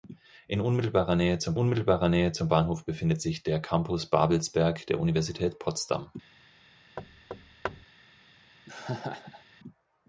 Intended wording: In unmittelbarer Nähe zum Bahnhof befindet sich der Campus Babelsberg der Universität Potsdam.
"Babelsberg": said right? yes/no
yes